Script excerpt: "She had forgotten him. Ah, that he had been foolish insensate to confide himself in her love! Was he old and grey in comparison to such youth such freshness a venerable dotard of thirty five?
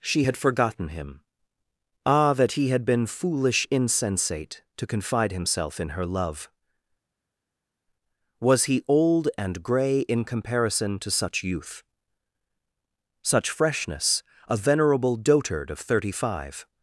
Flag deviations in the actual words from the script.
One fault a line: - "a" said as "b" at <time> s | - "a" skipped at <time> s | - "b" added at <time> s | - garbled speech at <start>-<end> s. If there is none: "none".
none